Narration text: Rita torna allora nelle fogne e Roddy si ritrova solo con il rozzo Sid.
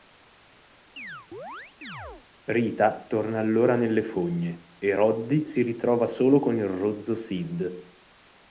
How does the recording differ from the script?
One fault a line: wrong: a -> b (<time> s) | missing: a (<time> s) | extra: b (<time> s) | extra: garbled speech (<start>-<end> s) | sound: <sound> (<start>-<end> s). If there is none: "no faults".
sound: chirp (1.0-2.3 s)